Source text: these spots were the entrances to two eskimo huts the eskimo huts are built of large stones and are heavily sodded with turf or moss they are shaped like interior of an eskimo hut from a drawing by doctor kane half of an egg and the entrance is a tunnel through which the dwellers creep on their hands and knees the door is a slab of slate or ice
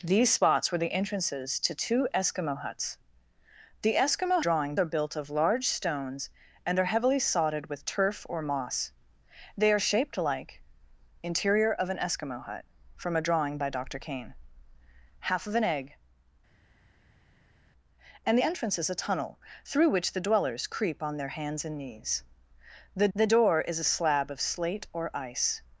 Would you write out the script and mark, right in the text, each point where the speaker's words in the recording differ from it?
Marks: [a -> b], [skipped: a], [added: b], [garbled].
these spots were the entrances to two eskimo huts the eskimo [huts -> drawing] are built of large stones and are heavily sodded with turf or moss they are shaped like interior of an eskimo hut from a drawing by doctor kane half of an egg and [skipped: the] entrance is a tunnel through which the dwellers creep on their hands and knees the [added: the] door is a slab of slate or ice